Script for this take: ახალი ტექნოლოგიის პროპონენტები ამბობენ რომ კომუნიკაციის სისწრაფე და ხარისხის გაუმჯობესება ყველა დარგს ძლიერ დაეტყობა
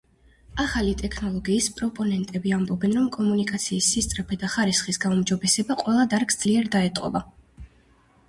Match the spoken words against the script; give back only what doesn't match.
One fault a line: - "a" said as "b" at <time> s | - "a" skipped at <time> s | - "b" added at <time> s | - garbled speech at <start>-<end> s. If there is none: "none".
none